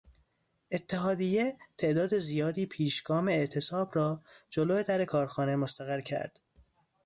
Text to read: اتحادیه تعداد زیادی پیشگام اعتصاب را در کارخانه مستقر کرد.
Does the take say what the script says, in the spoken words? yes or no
no